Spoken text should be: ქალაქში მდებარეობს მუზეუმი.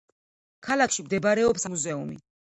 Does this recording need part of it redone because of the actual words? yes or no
no